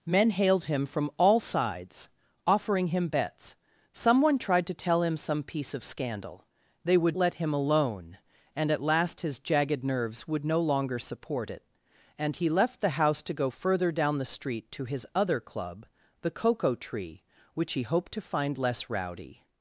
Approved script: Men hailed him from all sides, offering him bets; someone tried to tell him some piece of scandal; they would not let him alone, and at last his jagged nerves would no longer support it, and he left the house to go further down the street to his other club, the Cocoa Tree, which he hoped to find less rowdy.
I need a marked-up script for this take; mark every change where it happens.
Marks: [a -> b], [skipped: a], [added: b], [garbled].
Men hailed him from all sides, offering him bets; someone tried to tell him some piece of scandal; they would [skipped: not] let him alone, and at last his jagged nerves would no longer support it, and he left the house to go further down the street to his other club, the Cocoa Tree, which he hoped to find less rowdy.